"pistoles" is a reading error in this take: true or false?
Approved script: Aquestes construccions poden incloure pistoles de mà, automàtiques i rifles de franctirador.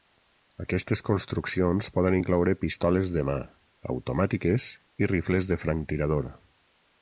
false